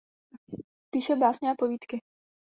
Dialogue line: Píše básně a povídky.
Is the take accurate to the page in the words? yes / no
yes